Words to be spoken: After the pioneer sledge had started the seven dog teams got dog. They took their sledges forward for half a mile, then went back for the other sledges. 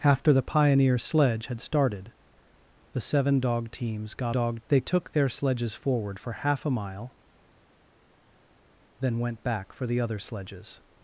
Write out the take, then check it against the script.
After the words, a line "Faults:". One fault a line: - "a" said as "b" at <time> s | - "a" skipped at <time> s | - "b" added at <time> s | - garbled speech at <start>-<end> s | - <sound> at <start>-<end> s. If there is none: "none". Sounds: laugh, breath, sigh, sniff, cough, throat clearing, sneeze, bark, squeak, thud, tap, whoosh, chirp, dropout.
After the pioneer sledge had started the seven dog teams got dog. They took their sledges forward for half a mile, then went back for the other sledges.
Faults:
none